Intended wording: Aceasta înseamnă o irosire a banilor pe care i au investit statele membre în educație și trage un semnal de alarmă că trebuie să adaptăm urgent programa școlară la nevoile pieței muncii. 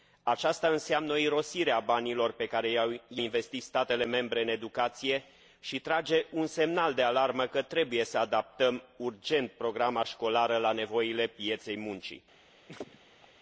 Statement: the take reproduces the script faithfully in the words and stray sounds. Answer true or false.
false